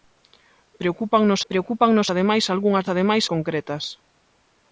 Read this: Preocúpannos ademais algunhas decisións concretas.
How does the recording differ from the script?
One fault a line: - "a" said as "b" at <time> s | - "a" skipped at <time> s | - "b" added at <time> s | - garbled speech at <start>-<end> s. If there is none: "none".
- "preocúpannos" added at 1.5 s
- "decisións" said as "ademais" at 2.9 s